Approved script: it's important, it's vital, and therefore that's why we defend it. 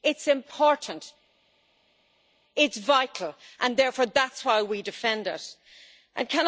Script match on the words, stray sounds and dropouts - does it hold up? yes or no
yes